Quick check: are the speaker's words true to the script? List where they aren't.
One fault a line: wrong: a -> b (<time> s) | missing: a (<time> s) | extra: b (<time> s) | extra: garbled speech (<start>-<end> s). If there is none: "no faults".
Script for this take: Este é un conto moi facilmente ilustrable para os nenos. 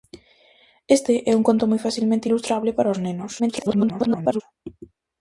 extra: garbled speech (3.4-4.4 s)